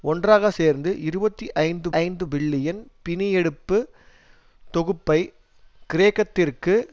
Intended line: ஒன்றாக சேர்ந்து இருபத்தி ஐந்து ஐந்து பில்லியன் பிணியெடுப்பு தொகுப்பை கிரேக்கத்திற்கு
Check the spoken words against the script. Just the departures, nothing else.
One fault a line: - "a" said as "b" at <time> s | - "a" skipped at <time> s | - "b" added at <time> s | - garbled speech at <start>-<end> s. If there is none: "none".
none